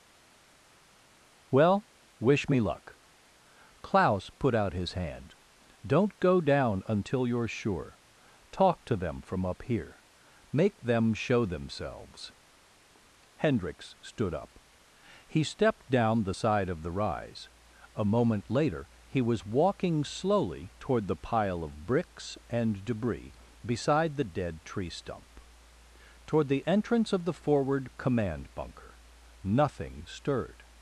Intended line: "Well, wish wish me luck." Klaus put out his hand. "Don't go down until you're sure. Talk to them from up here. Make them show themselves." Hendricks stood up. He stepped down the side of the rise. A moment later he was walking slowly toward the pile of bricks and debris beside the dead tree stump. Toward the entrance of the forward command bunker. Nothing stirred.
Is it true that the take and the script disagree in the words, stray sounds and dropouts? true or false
true